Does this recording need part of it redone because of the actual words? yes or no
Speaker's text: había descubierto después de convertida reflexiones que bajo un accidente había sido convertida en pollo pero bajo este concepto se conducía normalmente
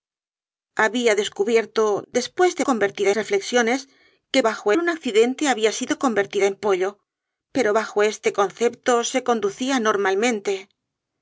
no